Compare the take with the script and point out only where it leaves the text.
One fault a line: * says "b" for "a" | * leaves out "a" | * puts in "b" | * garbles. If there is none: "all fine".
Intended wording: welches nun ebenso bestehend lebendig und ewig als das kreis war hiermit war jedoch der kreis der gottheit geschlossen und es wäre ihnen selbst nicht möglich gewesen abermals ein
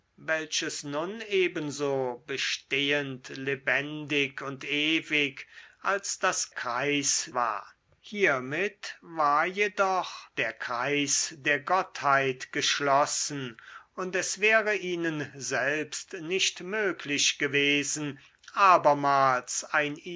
all fine